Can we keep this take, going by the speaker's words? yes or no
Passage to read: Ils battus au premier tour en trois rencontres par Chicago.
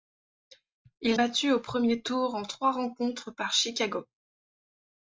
yes